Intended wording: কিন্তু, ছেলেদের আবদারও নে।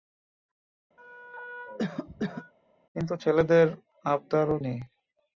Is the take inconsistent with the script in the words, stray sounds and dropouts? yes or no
yes